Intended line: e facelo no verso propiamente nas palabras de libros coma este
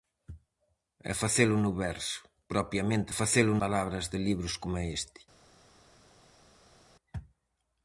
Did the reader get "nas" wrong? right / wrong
wrong